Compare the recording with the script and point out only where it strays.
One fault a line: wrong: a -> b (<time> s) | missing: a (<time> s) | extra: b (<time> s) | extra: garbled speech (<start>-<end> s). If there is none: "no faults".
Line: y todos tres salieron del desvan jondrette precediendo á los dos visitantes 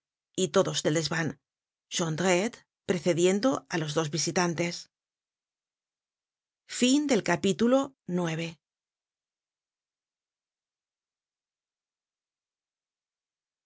missing: tres salieron (0.8 s)